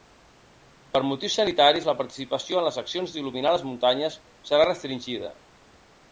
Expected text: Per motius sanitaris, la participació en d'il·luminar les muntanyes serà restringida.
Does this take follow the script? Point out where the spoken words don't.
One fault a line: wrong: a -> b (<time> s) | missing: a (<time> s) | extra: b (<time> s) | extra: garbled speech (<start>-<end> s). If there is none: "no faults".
extra: les accions (2.7 s)